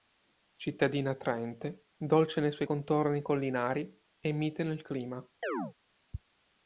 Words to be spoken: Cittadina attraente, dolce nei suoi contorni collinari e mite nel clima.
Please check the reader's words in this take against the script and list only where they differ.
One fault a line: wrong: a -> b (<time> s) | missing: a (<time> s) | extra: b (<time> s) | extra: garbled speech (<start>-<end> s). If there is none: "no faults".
no faults